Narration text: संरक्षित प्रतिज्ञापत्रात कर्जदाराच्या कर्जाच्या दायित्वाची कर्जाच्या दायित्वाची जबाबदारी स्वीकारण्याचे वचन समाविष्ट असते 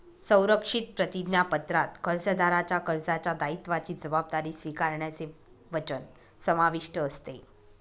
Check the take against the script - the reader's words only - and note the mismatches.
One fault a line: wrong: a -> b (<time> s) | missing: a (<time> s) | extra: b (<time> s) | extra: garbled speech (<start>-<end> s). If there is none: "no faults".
missing: कर्जाच्या दायित्वाची (3.9 s)